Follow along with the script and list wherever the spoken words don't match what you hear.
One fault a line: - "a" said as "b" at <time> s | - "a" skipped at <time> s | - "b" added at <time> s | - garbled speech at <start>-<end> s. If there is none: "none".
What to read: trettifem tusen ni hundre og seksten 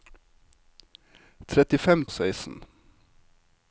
- "tusen ni hundre" skipped at 2.0 s